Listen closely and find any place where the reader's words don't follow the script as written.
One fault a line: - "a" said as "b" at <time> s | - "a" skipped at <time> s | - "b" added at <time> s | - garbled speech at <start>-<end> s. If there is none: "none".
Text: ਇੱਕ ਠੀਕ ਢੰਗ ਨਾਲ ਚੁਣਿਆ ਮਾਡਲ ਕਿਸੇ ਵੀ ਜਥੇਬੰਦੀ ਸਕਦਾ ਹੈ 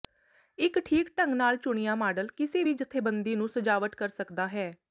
- "ਨੂੰ ਸਜਾਵਟ ਕਰ" added at 3.3 s